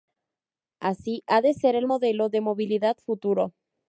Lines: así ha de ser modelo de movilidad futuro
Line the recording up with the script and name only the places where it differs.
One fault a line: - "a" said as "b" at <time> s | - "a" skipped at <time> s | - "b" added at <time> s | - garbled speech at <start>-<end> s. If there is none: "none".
- "el" added at 1.8 s